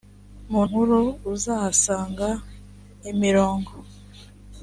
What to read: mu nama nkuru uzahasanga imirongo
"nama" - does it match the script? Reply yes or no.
no